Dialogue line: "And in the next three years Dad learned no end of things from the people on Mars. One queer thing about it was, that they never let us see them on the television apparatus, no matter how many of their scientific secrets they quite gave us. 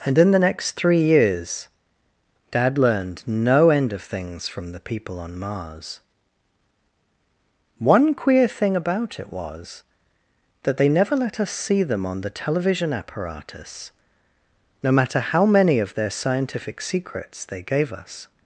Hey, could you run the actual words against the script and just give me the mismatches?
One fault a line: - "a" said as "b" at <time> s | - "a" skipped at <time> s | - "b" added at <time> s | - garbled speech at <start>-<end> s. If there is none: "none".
- "quite" skipped at 17.6 s